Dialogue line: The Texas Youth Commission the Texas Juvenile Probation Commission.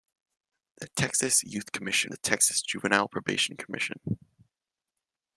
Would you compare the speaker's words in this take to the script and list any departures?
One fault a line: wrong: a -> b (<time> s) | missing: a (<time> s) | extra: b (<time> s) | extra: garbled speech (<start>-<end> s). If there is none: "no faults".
no faults